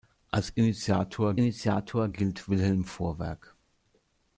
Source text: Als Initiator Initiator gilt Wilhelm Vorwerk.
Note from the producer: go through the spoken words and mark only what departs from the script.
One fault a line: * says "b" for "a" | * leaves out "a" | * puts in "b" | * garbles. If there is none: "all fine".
all fine